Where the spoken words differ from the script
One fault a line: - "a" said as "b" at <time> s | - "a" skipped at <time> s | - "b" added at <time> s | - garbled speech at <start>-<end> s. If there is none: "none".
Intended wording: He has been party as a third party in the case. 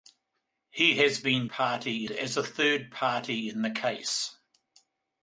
none